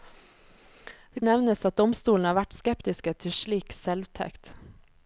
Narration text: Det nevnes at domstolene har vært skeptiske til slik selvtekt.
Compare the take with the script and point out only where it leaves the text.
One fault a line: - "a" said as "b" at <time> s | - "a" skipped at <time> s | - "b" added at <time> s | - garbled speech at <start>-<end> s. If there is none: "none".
none